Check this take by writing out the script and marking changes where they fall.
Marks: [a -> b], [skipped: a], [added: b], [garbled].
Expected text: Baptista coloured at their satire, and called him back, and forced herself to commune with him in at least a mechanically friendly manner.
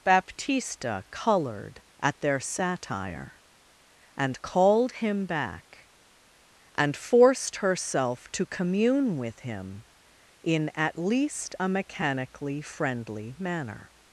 Baptista coloured at their satire, and called him back, and forced herself to commune with him in at least a mechanically friendly manner.